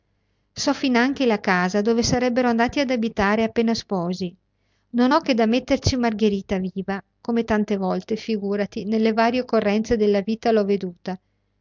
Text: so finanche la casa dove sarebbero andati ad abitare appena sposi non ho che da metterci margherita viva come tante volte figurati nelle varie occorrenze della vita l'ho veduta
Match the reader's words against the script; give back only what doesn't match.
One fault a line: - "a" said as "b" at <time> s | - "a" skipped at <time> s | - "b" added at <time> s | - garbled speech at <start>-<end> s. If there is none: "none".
none